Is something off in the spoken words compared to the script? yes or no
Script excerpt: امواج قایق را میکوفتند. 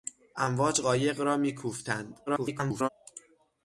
yes